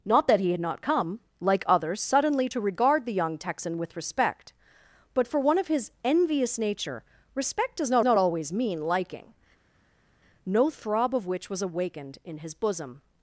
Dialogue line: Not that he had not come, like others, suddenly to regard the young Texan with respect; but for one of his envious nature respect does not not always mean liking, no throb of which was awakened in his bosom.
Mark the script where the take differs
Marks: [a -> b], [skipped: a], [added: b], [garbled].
Not that he had not come, like others, suddenly to regard the young Texan with respect; but for one of his envious nature respect does not not always mean liking, no throb of which was awakened in his bosom.